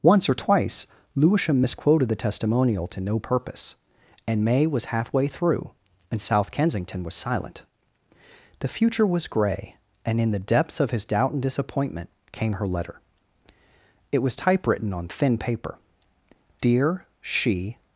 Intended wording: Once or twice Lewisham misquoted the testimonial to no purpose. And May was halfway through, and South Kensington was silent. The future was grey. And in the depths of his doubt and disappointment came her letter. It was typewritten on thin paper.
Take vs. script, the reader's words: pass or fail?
fail